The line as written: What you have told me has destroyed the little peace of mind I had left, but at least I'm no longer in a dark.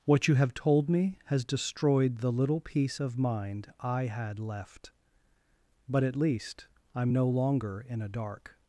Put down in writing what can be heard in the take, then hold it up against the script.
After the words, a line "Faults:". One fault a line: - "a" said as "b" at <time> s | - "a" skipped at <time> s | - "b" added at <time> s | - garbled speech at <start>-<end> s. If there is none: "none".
What you have told me has destroyed the little peace of mind I had left, but at least I'm no longer in a dark.
Faults:
none